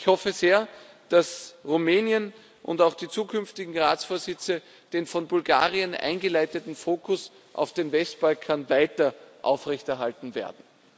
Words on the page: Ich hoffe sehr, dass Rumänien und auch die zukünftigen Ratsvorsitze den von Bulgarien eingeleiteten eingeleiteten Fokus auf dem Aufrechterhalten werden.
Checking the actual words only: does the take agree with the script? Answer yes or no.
no